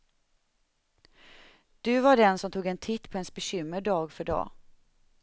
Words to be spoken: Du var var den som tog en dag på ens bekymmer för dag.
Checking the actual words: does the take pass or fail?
fail